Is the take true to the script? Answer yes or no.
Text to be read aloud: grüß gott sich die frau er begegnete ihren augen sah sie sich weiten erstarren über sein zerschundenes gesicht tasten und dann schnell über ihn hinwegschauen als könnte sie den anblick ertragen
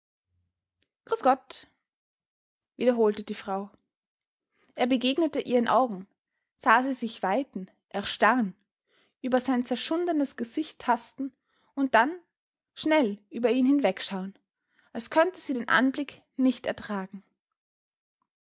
no